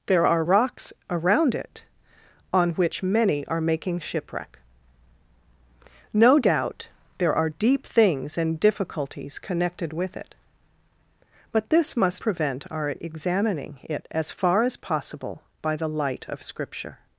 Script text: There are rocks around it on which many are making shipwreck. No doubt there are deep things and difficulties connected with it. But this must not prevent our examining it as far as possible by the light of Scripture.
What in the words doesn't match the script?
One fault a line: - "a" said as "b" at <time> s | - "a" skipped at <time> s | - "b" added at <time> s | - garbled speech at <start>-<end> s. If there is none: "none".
- "not" skipped at 12.2 s